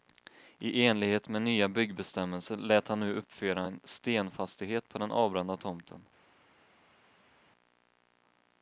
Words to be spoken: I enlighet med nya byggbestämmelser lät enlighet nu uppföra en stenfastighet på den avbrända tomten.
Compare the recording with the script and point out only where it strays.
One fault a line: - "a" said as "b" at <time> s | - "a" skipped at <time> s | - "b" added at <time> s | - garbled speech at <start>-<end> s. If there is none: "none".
- "enlighet" said as "han" at 2.9 s